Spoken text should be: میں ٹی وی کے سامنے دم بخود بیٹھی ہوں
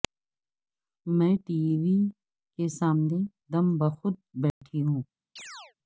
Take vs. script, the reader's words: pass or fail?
pass